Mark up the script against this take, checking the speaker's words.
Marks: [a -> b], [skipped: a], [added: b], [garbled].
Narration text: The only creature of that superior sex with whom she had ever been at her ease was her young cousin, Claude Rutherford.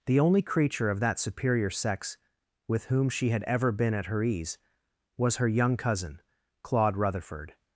The only creature of that superior sex with whom she had ever been at her ease was her young cousin, Claude Rutherford.